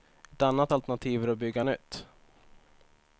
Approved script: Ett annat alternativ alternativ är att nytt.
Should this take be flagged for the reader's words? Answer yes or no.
yes